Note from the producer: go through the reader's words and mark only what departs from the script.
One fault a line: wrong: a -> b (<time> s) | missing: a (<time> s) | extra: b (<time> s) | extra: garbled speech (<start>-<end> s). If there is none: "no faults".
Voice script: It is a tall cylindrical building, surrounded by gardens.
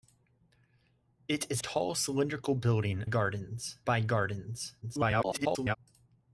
missing: a (1.6 s)
wrong: surrounded -> gardens (3.0 s)
extra: garbled speech (4.8-5.8 s)